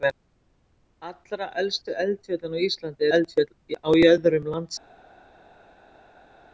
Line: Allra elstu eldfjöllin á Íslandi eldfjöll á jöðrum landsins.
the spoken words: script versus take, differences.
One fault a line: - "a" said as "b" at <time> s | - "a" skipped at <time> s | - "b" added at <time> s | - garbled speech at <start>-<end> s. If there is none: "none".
none